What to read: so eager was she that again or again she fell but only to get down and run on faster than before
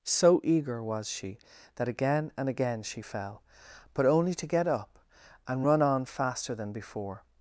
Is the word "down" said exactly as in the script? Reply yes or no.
no